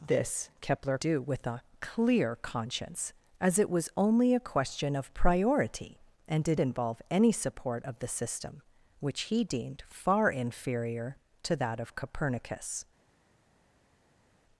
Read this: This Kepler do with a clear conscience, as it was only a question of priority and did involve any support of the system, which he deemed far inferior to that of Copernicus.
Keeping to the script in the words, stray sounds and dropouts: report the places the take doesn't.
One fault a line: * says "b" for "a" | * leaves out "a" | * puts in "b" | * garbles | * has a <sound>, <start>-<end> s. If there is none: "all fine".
all fine